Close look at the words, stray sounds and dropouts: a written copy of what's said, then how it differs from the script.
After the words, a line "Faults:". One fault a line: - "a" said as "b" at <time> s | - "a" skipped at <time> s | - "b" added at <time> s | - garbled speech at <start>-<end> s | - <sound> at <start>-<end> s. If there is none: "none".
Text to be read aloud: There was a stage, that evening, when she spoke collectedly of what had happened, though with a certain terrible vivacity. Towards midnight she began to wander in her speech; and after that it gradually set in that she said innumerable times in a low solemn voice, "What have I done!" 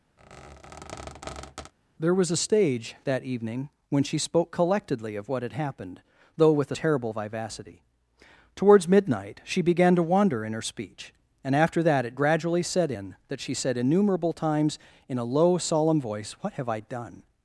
There was a stage, that evening, when she spoke collectedly of what had happened, though with a terrible vivacity. Towards midnight she began to wander in her speech; and after that it gradually set in that she said innumerable times in a low solemn voice, "What have I done!"
Faults:
- squeak at 0.2-1.7 s
- "certain" skipped at 6.8 s